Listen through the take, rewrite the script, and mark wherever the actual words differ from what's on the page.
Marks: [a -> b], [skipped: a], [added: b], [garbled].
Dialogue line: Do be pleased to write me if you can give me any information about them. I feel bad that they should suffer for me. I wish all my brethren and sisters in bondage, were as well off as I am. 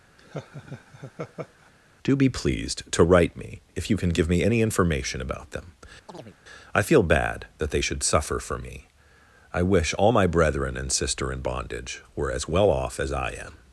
Do be pleased to write me if you can give me any information about them. I feel bad that they should suffer for me. I wish all my brethren and [sisters -> sister] in bondage, were as well off as I am.